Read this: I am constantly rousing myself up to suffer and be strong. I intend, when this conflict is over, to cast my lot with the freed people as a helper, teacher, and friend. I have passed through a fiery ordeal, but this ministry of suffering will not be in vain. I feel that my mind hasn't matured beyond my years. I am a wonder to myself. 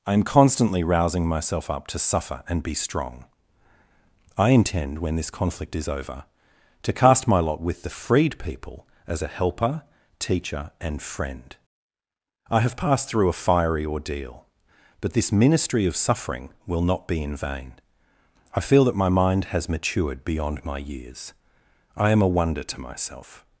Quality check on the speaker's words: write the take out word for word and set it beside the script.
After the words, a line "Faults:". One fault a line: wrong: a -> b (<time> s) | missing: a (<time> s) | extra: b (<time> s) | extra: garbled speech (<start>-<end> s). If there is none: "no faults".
I am constantly rousing myself up to suffer and be strong. I intend, when this conflict is over, to cast my lot with the freed people as a helper, teacher, and friend. I have passed through a fiery ordeal, but this ministry of suffering will not be in vain. I feel that my mind has matured beyond my years. I am a wonder to myself.
Faults:
wrong: hasn't -> has (19.4 s)